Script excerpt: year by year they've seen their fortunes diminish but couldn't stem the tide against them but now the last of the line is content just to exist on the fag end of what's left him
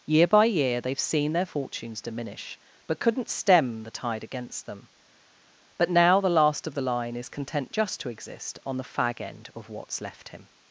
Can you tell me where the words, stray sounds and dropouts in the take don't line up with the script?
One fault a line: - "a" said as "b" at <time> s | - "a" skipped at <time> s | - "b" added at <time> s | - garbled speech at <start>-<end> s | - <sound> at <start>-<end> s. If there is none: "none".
none